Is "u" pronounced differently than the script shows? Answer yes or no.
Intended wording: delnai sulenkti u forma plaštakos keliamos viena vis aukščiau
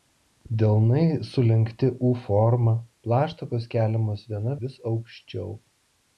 no